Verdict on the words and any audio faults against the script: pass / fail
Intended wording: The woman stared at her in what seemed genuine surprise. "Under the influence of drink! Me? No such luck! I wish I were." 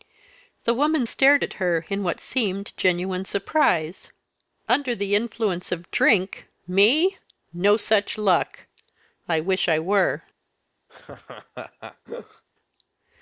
fail